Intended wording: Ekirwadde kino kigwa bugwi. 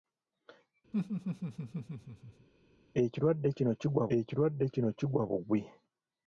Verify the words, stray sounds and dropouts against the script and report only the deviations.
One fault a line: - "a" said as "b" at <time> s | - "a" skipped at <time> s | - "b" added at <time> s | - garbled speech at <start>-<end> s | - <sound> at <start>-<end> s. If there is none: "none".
- laugh at 0.9-2.5 s
- "ekirwadde kino kigwa" added at 4.2 s